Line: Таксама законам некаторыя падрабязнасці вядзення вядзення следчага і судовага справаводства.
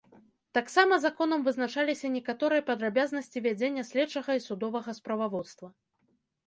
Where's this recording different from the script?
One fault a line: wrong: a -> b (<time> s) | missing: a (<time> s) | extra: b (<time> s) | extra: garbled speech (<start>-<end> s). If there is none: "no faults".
extra: вызначаліся (1.5 s)
missing: вядзення (3.8 s)